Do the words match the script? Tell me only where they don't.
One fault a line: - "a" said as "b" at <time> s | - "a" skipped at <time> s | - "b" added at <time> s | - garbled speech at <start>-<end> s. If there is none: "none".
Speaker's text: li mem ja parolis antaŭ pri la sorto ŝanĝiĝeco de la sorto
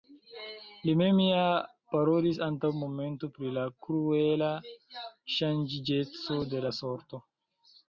- "momento" added at 2.9 s
- "sorto" said as "kruela" at 3.9 s